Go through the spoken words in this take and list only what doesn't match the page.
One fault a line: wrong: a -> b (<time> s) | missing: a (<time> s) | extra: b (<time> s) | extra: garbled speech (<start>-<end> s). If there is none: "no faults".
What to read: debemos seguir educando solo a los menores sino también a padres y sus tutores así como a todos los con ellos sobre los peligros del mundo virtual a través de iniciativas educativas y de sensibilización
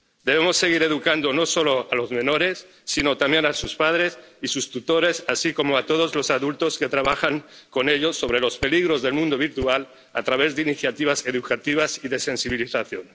extra: no (1.3 s)
extra: sus (3.5 s)
extra: adultos que trabajan (6.3 s)